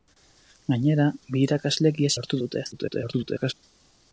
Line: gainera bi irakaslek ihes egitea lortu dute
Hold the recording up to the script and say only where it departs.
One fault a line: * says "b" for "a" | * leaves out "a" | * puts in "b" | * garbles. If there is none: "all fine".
* leaves out "egitea"
* garbles